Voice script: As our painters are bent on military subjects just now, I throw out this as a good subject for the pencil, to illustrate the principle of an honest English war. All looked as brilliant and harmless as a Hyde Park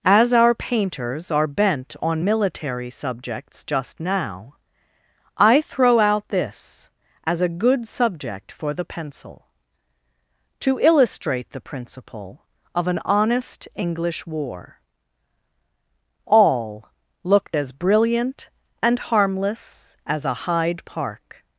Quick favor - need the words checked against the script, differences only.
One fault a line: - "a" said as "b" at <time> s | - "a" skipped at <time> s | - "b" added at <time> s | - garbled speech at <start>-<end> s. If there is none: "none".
none